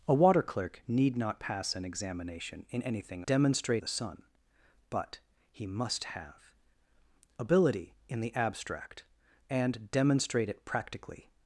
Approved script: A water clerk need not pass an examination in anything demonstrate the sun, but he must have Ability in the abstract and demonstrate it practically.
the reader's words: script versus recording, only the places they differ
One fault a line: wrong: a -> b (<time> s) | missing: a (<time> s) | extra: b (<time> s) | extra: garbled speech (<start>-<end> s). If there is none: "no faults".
no faults